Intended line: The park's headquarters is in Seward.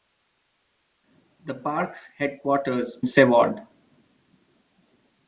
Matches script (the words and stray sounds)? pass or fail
fail